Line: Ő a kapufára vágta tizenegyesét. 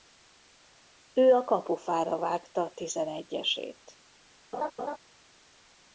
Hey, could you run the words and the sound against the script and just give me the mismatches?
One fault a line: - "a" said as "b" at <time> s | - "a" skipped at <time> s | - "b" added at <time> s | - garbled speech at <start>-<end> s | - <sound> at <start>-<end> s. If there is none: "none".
- laugh at 4.5-5.0 s